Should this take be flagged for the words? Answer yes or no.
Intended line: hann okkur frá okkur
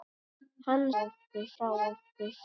no